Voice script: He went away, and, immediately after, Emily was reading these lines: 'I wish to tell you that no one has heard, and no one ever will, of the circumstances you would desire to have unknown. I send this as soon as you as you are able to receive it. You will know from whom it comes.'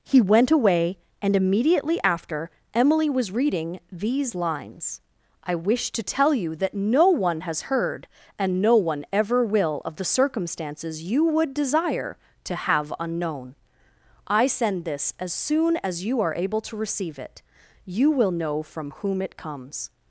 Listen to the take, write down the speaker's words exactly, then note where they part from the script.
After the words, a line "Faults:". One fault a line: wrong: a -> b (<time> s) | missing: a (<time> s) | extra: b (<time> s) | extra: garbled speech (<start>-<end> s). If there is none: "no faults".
He went away, and, immediately after, Emily was reading these lines: 'I wish to tell you that no one has heard, and no one ever will, of the circumstances you would desire to have unknown. I send this as soon as you are able to receive it. You will know from whom it comes.'
Faults:
missing: as you (16.2 s)